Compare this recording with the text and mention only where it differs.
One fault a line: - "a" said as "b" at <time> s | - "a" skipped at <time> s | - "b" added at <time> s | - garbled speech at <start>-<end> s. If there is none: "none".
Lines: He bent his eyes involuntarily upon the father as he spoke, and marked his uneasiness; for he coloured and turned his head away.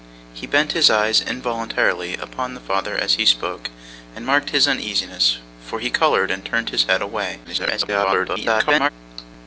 - garbled speech at 7.4-8.9 s